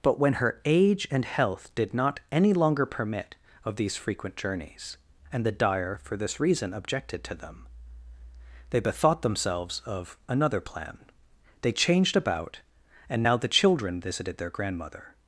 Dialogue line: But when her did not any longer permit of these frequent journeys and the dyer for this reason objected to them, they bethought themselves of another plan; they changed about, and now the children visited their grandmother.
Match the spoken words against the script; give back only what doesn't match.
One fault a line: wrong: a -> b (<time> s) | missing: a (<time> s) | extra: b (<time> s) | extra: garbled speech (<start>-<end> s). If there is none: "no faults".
extra: age and health (0.7 s)